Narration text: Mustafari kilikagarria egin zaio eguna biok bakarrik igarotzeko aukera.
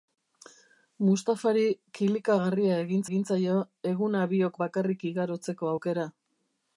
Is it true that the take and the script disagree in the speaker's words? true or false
true